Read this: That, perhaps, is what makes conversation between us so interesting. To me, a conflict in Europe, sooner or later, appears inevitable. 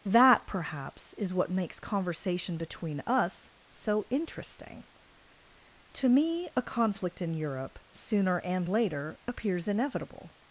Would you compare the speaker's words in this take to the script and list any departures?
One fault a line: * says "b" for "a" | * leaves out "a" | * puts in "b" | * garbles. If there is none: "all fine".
* says "and" for "or"